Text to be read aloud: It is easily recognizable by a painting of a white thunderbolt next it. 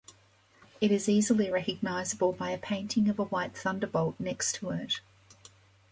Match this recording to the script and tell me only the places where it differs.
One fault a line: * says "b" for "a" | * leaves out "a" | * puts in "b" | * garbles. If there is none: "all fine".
* puts in "to"